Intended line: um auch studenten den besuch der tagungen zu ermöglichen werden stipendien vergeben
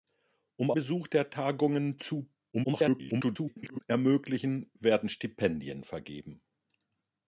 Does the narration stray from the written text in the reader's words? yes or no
yes